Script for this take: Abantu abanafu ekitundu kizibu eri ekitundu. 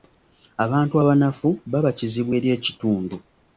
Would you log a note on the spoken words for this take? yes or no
yes